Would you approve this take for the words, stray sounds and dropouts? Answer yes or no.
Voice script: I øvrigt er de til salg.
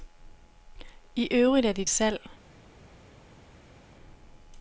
no